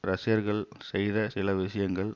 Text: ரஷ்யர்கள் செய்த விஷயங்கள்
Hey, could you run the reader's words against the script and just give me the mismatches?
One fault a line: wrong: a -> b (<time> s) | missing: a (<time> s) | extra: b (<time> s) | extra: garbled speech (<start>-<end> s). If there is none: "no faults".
extra: சில (1.2 s)